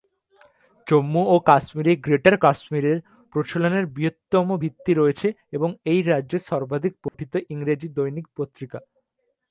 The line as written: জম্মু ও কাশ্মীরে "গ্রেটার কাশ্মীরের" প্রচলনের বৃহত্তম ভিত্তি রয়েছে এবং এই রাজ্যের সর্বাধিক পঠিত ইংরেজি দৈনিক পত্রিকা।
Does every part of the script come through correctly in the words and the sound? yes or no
no